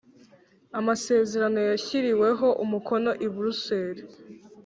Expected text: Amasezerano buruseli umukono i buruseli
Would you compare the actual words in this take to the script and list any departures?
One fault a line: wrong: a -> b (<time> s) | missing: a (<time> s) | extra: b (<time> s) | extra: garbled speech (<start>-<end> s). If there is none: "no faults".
wrong: buruseli -> yashyiriweho (1.7 s)